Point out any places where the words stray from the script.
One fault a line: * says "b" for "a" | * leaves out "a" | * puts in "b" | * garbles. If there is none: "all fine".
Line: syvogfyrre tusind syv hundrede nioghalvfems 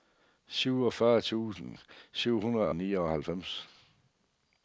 all fine